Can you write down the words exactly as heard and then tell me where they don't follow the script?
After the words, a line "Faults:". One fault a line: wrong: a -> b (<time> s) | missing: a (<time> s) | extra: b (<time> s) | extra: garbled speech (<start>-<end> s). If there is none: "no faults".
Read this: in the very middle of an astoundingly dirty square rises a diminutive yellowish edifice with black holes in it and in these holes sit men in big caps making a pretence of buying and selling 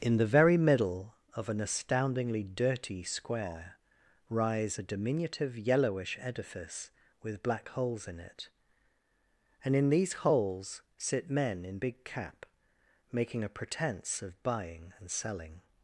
in the very middle of an astoundingly dirty square rise a diminutive yellowish edifice with black holes in it and in these holes sit men in big cap making a pretence of buying and selling
Faults:
wrong: rises -> rise (4.3 s)
wrong: caps -> cap (12.0 s)